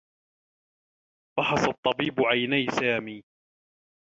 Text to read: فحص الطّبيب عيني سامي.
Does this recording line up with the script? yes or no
yes